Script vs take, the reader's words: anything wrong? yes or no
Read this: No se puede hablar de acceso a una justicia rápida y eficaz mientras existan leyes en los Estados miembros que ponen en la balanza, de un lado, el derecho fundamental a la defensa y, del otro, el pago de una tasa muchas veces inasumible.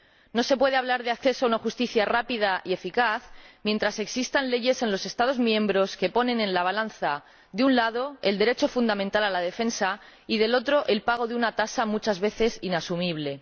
no